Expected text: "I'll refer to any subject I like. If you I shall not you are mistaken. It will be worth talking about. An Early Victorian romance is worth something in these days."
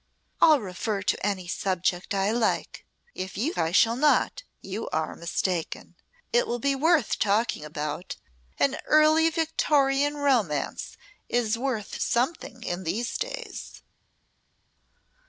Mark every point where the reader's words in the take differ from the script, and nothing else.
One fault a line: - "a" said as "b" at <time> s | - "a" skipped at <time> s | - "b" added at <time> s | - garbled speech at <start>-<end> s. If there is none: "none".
none